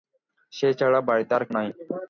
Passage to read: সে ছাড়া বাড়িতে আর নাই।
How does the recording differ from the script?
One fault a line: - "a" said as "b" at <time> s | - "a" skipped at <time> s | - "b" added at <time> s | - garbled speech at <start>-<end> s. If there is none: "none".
none